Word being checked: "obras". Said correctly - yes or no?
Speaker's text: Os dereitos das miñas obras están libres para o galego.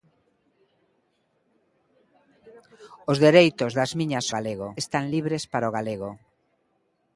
no